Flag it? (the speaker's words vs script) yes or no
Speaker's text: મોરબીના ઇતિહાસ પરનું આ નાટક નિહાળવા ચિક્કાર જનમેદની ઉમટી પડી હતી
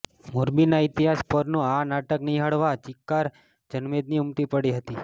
no